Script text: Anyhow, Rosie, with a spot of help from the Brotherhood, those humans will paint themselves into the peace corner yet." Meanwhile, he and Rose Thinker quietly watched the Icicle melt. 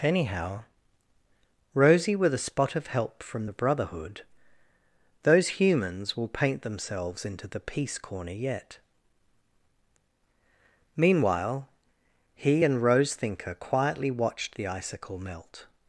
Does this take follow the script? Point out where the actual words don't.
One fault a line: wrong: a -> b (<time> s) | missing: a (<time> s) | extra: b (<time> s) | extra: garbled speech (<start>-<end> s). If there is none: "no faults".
no faults